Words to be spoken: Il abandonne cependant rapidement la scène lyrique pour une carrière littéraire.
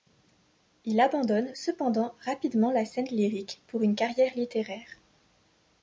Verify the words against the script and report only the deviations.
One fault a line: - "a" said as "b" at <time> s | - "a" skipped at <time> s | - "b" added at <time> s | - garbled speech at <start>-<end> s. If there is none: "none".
none